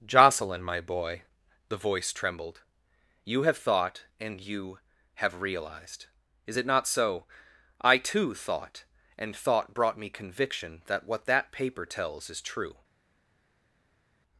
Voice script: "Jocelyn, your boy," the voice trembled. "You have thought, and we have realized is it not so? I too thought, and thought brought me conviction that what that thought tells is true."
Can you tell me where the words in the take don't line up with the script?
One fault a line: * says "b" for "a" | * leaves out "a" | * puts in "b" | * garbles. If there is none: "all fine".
* says "my" for "your"
* says "you" for "we"
* says "paper" for "thought"